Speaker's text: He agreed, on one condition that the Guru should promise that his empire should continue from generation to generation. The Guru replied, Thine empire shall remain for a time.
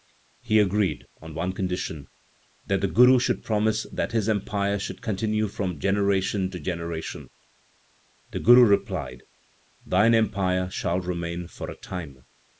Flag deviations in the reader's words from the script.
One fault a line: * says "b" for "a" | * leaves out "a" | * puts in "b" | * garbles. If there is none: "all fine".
all fine